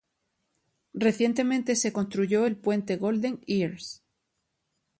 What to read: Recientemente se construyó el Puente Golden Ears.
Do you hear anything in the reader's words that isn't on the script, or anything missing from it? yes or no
no